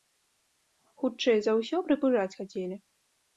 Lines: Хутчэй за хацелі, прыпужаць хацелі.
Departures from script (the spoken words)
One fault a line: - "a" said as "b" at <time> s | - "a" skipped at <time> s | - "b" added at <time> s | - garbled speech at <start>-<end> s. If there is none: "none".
- "хацелі" said as "ўсё" at 1.6 s